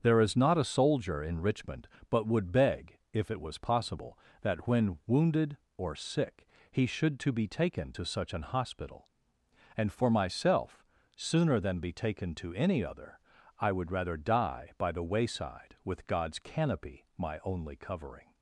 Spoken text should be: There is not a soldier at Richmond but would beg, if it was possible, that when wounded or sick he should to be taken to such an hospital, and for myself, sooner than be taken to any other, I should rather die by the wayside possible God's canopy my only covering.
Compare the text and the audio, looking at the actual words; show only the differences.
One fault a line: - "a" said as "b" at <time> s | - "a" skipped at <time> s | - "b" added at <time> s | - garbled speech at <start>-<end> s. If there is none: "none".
- "at" said as "in" at 1.2 s
- "should" said as "would" at 13.7 s
- "possible" said as "with" at 15.8 s